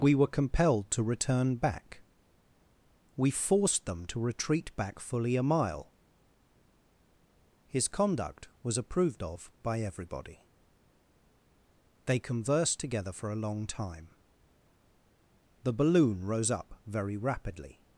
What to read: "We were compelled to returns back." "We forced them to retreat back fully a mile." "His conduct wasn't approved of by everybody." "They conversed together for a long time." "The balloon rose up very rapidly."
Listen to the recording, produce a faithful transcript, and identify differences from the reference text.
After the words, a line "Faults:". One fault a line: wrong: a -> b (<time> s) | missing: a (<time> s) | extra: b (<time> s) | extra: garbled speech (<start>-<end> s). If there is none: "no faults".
"We were compelled to return back." "We forced them to retreat back fully a mile." "His conduct was approved of by everybody." "They conversed together for a long time." "The balloon rose up very rapidly."
Faults:
wrong: returns -> return (1.0 s)
wrong: wasn't -> was (8.6 s)